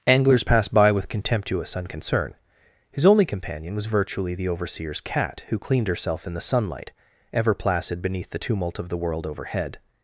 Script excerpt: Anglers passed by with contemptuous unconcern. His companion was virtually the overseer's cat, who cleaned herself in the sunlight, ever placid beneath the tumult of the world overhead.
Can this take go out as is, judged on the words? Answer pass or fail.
fail